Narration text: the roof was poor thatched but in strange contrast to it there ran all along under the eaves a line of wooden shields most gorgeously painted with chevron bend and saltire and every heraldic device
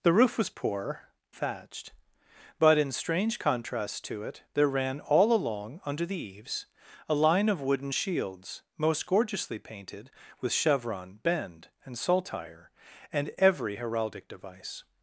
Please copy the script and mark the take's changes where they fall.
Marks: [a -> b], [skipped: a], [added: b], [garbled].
the roof was poor thatched but in strange contrast to it there ran all along under the eaves a line of wooden shields most gorgeously painted with chevron bend and saltire and every heraldic device